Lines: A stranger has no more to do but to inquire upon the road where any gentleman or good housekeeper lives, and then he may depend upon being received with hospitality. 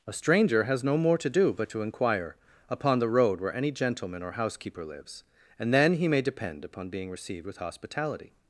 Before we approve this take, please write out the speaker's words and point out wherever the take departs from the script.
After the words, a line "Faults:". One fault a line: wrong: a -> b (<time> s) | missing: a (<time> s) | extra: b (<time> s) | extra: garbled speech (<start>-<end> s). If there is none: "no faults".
A stranger has no more to do but to inquire upon the road where any gentleman or housekeeper lives, and then he may depend upon being received with hospitality.
Faults:
missing: good (4.3 s)